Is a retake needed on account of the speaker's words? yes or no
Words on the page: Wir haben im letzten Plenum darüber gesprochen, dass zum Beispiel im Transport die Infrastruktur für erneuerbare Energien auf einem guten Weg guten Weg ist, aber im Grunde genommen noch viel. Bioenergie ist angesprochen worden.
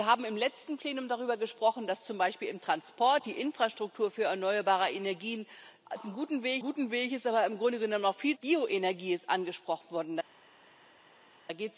no